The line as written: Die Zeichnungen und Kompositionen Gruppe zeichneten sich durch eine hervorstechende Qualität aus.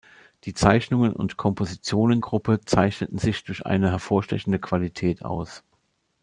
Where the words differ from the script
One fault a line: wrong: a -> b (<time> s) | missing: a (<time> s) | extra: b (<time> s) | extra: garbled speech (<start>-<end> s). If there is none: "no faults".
no faults